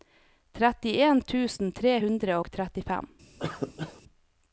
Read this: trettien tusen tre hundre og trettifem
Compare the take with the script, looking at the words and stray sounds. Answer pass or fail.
fail